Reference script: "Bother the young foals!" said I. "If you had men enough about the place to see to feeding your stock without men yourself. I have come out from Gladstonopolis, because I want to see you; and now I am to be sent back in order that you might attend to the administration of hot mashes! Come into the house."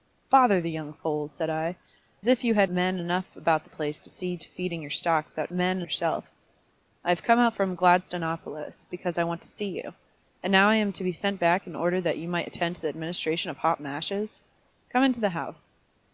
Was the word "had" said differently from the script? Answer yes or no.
no